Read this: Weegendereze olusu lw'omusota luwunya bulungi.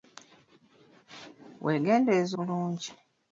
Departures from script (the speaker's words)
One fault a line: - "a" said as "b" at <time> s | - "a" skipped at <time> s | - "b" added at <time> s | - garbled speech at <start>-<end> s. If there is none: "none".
- "olusu lw'omusota luwunya" skipped at 2.4 s